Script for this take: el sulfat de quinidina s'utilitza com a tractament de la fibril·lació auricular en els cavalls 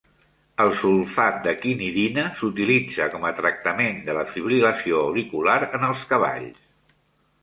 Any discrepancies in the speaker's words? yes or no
no